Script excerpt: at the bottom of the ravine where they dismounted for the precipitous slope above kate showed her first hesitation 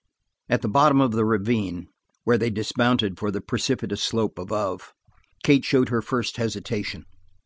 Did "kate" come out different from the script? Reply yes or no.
no